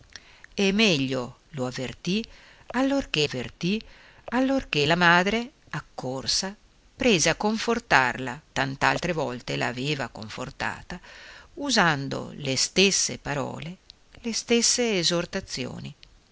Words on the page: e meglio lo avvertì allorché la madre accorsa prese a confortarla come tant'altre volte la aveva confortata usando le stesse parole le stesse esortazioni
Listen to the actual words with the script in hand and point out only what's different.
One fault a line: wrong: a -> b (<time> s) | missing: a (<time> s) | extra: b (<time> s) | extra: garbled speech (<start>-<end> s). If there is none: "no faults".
extra: avvertì allorché (3.2 s)
missing: come (8.4 s)